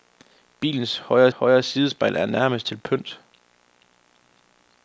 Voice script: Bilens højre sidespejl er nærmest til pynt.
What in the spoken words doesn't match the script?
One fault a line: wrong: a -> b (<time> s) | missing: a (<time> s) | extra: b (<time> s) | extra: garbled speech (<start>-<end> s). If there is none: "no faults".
extra: højre (1.3 s)